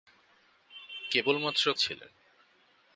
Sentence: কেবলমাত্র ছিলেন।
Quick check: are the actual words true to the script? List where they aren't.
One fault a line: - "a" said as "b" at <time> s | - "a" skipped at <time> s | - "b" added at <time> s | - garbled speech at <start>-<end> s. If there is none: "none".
none